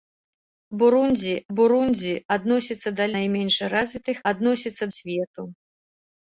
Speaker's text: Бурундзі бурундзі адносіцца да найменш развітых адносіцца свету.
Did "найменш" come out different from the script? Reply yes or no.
no